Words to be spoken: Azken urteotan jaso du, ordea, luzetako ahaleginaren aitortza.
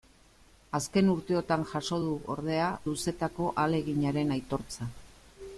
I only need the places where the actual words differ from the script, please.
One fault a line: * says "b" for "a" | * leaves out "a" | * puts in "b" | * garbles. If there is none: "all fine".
all fine